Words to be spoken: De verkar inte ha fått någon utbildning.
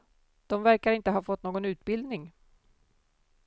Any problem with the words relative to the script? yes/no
no